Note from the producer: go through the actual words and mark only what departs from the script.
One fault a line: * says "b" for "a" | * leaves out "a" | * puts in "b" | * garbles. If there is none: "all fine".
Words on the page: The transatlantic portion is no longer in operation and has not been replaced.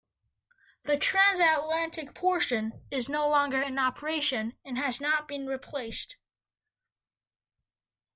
all fine